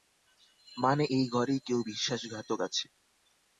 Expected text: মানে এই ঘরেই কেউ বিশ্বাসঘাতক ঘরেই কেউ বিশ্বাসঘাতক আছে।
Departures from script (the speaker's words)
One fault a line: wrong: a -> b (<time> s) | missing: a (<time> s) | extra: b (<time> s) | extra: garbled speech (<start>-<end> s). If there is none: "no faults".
missing: ঘরেই কেউ বিশ্বাসঘাতক (2.6 s)